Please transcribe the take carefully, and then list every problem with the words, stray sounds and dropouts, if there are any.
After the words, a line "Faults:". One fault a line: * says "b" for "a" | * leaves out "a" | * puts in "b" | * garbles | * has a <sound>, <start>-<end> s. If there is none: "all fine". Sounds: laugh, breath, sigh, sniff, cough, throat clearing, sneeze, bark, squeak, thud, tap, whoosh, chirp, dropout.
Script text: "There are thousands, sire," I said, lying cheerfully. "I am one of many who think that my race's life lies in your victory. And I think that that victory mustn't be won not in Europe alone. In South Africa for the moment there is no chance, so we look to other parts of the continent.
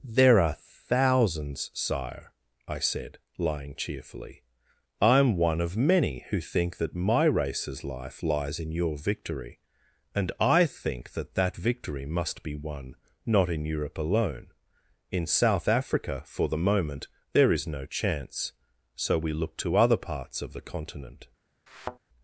"There are thousands, sire," I said, lying cheerfully. "I am one of many who think that my race's life lies in your victory. And I think that that victory must be won not in Europe alone. In South Africa for the moment there is no chance, so we look to other parts of the continent.
Faults:
* says "must" for "mustn't"
* has a thud, 21.7-22.0 s